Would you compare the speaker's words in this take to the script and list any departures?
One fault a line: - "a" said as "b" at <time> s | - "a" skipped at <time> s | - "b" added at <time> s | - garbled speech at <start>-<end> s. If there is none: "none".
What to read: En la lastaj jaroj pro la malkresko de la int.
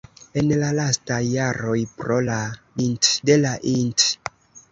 - "malkresko" said as "int" at 2.8 s